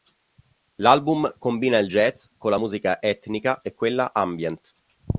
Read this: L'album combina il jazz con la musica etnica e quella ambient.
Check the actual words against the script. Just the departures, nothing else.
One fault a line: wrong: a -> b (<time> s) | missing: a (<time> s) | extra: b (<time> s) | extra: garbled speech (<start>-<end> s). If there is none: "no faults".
no faults